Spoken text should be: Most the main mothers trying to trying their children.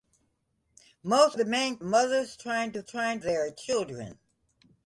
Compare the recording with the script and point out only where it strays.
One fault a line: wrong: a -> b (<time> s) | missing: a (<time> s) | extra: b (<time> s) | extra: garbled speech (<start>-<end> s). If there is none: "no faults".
no faults